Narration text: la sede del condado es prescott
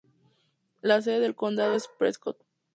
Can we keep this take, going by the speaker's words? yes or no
yes